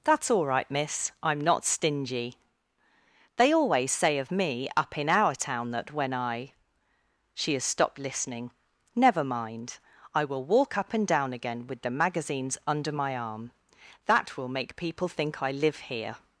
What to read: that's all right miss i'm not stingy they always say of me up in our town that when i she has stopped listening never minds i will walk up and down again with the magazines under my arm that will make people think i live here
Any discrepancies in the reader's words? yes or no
yes